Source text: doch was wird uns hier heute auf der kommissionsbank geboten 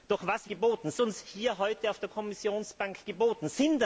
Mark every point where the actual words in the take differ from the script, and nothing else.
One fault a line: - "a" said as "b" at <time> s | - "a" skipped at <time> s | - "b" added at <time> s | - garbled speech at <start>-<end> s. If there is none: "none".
- "wird" said as "geboten" at 0.5 s